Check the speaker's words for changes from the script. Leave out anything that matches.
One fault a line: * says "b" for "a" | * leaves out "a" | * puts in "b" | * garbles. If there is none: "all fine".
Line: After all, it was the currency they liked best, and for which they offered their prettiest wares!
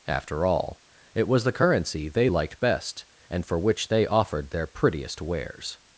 all fine